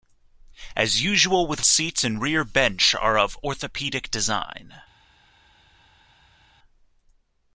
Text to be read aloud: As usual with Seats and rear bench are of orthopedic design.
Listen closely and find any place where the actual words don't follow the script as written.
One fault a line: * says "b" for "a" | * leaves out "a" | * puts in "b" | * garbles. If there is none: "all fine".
all fine